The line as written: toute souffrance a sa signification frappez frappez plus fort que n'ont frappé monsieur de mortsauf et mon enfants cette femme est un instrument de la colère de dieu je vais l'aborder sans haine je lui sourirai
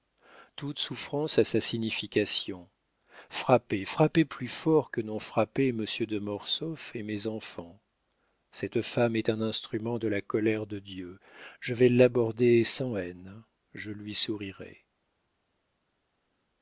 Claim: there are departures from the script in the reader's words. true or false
true